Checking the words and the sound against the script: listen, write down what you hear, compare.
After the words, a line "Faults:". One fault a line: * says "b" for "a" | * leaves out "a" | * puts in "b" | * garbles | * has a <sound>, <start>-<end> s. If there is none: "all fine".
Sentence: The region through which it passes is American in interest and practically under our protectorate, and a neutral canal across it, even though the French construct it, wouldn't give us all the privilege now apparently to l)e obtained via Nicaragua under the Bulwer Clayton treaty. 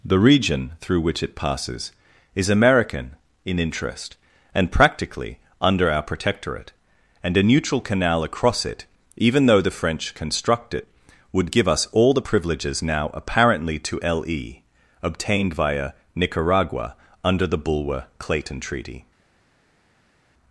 The region through which it passes is American in interest and practically under our protectorate, and a neutral canal across it, even though the French construct it, would give us all the privileges now apparently to l)e obtained via Nicaragua under the Bulwer Clayton treaty.
Faults:
* says "would" for "wouldn't"
* says "privileges" for "privilege"